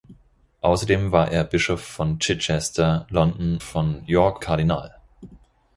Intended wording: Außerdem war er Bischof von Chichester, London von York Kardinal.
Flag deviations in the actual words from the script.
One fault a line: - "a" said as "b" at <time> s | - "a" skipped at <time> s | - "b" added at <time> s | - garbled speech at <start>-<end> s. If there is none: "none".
none